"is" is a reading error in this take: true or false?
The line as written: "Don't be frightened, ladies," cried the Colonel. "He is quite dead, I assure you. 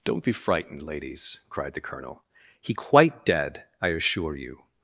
true